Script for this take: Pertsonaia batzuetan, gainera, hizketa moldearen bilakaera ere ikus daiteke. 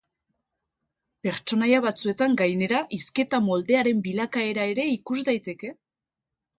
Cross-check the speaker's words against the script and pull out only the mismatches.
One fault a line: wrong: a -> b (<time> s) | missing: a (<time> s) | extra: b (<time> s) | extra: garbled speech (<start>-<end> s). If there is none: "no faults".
no faults